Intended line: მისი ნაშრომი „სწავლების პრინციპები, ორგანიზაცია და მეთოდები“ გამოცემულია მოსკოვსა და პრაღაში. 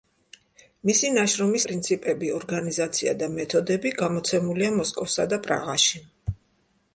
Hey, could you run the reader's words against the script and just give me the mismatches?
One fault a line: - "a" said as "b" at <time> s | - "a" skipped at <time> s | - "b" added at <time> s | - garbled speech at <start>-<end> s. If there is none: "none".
- "სწავლების" skipped at 1.6 s